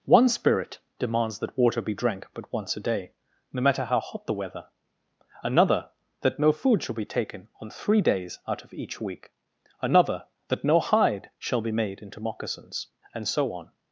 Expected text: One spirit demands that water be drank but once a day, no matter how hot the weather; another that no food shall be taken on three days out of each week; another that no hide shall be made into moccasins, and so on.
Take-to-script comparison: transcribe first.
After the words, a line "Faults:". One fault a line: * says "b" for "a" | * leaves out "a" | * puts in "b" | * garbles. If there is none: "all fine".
One spirit demands that water be drank but once a day, no matter how hot the weather; another that no food shall be taken on three days out of each week; another that no hide shall be made into moccasins, and so on.
Faults:
all fine